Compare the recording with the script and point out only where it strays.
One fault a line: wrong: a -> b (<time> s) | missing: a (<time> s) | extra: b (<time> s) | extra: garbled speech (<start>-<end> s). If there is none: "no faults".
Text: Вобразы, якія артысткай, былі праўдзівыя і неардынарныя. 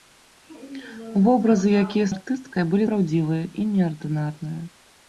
no faults